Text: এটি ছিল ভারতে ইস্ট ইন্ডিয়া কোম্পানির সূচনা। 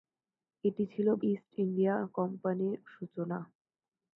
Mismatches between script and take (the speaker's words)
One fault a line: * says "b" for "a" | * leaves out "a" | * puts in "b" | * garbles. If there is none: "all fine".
* leaves out "ভারতে"